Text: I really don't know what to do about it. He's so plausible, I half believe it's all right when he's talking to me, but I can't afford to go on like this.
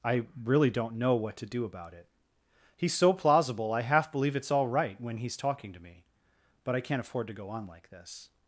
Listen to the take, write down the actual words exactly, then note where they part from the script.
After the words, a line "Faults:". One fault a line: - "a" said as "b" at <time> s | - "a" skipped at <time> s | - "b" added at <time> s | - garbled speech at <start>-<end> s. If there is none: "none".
I really don't know what to do about it. He's so plausible, I half believe it's all right when he's talking to me, but I can't afford to go on like this.
Faults:
none